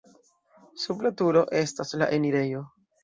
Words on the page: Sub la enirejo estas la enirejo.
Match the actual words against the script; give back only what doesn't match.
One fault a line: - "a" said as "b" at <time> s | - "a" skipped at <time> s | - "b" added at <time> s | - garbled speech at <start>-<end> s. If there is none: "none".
- "enirejo" said as "turo" at 1.2 s